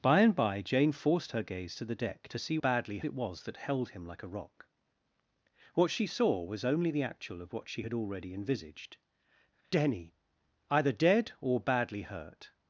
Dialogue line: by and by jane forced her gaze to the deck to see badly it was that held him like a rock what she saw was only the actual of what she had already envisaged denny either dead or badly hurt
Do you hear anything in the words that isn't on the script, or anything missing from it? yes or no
no